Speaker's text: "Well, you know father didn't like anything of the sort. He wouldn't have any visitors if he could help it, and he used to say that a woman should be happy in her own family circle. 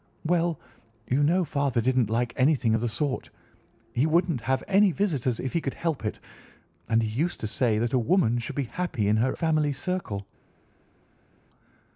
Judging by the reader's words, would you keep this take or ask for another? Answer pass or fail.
fail